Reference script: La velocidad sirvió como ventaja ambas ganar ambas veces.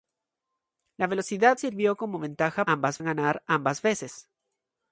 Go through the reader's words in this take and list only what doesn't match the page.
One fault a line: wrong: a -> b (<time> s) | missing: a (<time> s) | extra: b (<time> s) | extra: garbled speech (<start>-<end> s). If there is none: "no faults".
no faults